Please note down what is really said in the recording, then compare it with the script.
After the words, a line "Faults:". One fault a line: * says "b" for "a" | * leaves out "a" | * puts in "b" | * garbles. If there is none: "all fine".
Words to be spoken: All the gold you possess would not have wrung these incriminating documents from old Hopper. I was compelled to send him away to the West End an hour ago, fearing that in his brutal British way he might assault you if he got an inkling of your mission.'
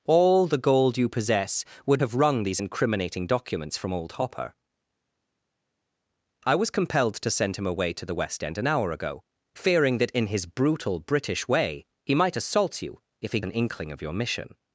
All the gold you possess would have wrung these incriminating documents from old Hopper. I was compelled to send him away to the West End an hour ago, fearing that in his brutal British way he might assault you if he an inkling of your mission.'
Faults:
* leaves out "not"
* leaves out "got"